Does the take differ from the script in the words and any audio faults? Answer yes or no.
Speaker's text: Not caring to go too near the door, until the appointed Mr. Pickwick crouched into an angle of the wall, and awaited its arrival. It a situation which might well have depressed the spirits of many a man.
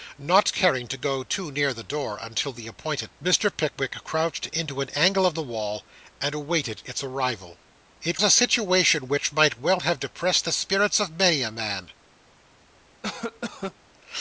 yes